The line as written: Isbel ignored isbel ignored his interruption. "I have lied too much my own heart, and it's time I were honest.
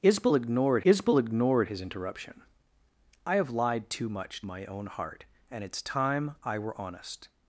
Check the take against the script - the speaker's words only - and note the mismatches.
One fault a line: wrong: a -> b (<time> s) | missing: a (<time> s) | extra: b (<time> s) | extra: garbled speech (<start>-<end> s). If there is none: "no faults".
no faults